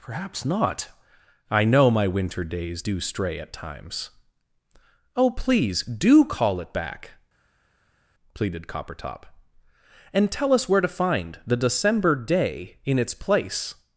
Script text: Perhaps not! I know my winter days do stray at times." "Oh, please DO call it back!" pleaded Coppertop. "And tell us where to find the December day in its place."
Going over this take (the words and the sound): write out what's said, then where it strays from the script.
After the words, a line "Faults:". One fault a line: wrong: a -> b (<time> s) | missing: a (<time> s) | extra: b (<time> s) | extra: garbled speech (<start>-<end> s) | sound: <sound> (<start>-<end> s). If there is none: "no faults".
Perhaps not! I know my winter days do stray at times." "Oh, please DO call it back!" pleaded Coppertop. "And tell us where to find the December day in its place."
Faults:
no faults